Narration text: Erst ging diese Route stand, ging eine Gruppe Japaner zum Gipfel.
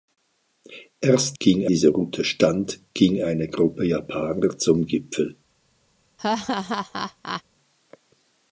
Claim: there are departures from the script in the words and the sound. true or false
true